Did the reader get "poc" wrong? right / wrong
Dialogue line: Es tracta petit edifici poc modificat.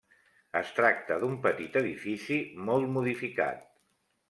wrong